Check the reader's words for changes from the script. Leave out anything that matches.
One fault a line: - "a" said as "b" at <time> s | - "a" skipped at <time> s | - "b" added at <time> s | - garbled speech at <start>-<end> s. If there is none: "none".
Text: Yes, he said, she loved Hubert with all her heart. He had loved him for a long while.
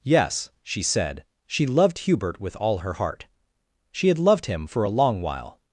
- "he" said as "she" at 0.6 s
- "He" said as "She" at 3.9 s